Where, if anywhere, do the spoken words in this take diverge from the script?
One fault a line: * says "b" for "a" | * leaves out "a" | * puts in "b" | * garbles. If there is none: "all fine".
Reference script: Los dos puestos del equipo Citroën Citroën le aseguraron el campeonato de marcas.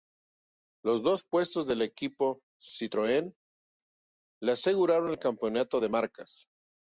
* leaves out "Citroën"